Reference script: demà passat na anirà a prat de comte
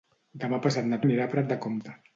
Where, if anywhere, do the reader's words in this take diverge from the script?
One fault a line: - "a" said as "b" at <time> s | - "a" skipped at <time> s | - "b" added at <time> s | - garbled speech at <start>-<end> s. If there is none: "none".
none